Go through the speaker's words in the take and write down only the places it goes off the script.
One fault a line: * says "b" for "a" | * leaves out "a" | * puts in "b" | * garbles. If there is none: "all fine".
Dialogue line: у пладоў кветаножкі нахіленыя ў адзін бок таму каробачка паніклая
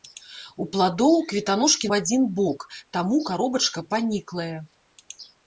* leaves out "нахіленыя"